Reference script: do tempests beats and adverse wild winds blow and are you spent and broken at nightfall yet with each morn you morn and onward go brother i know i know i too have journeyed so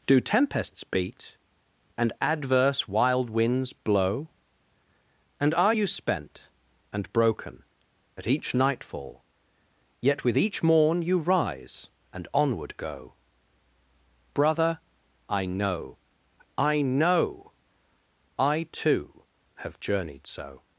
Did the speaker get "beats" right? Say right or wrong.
wrong